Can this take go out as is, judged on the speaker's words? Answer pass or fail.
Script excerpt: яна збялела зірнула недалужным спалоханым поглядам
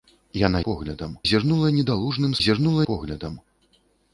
fail